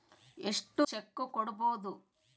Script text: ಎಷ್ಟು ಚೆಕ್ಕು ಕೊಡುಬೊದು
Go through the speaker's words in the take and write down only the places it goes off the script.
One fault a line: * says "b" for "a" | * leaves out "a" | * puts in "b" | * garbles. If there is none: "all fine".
all fine